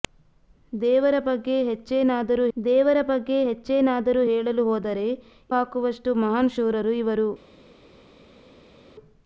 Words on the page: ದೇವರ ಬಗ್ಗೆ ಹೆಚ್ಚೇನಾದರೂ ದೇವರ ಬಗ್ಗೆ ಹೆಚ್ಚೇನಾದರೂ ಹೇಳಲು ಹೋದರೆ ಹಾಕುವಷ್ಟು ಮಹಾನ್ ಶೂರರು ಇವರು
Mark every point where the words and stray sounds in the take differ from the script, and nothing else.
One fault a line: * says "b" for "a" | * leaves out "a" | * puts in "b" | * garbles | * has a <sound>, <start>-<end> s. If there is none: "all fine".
all fine